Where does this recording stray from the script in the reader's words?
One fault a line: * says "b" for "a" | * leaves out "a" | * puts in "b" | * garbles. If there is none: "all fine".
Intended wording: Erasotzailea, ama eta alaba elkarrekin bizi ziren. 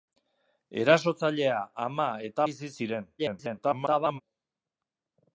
* leaves out "alaba elkarrekin"
* garbles